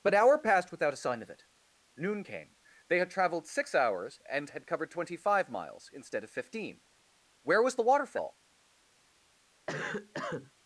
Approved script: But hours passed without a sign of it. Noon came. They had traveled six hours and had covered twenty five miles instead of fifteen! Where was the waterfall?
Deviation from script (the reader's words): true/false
true